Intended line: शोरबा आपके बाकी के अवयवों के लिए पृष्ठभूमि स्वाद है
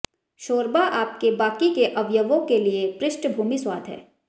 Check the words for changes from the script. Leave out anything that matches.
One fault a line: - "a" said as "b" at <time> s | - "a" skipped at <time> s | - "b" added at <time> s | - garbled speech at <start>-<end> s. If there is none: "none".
none